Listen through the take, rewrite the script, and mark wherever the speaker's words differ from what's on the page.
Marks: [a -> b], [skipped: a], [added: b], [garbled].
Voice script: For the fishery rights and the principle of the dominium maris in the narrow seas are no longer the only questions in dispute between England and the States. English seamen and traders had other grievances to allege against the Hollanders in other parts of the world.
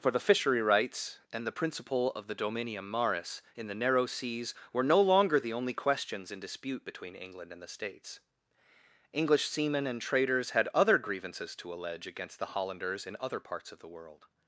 For the fishery rights and the principle of the dominium maris in the narrow seas [are -> were] no longer the only questions in dispute between England and the States. English seamen and traders had other grievances to allege against the Hollanders in other parts of the world.